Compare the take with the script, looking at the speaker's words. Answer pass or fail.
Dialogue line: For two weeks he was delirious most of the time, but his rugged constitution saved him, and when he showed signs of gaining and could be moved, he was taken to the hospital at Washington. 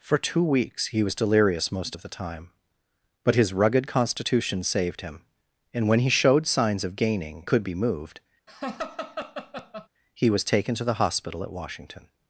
fail